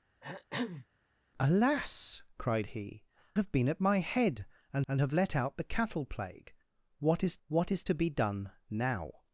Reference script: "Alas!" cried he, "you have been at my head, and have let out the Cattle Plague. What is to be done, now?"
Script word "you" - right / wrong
wrong